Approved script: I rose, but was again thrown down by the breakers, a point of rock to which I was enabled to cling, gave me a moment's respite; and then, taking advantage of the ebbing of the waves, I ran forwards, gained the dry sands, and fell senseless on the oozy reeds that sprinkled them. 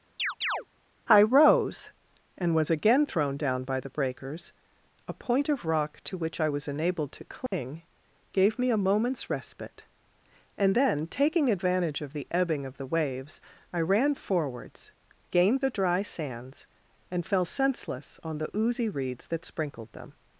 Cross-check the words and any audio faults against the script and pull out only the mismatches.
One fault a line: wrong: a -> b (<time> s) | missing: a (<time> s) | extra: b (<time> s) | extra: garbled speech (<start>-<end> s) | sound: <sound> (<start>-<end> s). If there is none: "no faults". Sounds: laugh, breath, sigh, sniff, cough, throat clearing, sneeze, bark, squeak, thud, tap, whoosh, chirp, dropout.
sound: chirp (0.2-0.7 s)
wrong: but -> and (2.4 s)
sound: dropout (7.5-7.5 s)